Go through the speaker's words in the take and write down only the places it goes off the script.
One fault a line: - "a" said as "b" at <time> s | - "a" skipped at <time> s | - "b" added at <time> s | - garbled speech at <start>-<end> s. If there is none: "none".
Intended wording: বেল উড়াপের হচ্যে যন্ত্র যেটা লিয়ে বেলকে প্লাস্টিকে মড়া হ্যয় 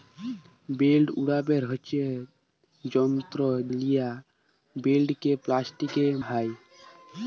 - "যেটা" skipped at 3.4 s
- "মড়া" skipped at 6.0 s